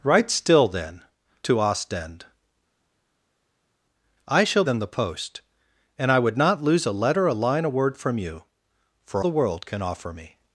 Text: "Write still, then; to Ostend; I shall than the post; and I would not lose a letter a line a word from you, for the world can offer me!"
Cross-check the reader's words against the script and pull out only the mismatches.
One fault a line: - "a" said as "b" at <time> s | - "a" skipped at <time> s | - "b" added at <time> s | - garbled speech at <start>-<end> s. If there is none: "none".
none